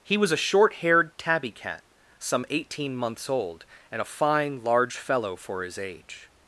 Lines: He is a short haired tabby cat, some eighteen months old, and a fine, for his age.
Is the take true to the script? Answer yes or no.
no